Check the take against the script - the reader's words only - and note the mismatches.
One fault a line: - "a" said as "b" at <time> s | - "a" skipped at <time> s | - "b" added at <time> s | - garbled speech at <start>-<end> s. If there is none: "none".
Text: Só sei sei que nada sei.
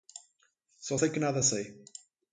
- "sei" skipped at 1.1 s